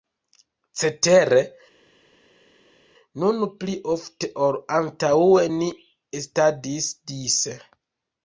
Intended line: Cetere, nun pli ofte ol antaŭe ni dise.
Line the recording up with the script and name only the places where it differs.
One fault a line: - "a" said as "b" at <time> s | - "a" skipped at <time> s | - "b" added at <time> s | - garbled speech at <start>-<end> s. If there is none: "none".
- "estadis" added at 6.2 s